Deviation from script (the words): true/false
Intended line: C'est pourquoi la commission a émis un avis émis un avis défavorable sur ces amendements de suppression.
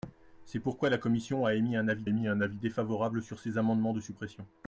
false